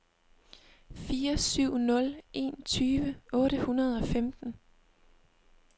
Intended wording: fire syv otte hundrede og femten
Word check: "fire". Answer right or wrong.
right